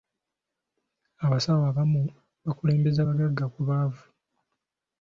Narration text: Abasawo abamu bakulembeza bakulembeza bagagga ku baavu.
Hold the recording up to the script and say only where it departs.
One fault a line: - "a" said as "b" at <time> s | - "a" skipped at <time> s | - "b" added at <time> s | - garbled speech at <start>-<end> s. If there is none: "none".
- "bakulembeza" skipped at 3.0 s